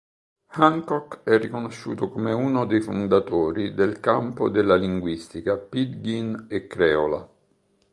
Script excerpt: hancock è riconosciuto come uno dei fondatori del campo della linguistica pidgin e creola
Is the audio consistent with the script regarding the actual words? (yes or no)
yes